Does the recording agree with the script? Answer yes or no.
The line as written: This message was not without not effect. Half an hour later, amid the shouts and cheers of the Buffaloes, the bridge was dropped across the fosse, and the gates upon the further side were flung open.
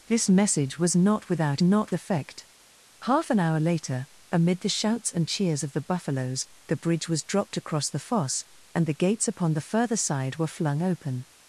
yes